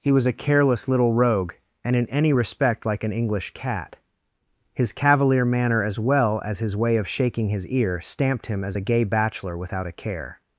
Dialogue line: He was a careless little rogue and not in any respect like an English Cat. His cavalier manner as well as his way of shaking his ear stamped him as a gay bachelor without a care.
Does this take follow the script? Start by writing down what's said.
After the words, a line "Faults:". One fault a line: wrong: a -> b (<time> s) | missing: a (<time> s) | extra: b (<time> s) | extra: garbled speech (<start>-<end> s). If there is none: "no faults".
He was a careless little rogue and in any respect like an English Cat. His cavalier manner as well as his way of shaking his ear stamped him as a gay bachelor without a care.
Faults:
missing: not (1.9 s)